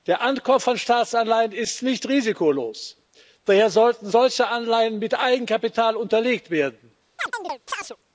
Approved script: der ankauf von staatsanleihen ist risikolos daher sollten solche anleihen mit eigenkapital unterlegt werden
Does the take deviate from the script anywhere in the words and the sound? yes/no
yes